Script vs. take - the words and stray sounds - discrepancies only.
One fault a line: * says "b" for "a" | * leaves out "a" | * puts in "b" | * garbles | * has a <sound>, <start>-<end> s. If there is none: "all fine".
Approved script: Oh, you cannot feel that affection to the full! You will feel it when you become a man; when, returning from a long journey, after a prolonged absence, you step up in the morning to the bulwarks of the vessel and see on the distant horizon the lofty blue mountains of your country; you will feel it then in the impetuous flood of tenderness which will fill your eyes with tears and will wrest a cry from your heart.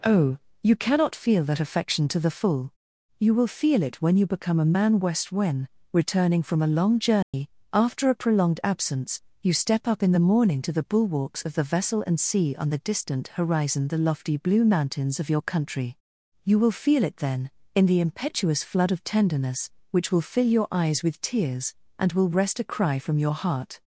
* puts in "west"
* has a dropout, 7.2-7.3 s